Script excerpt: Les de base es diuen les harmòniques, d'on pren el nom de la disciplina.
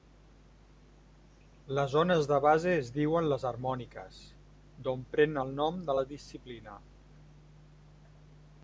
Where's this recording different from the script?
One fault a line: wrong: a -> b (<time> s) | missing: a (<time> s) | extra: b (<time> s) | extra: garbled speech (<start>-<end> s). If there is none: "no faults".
extra: ones (1.9 s)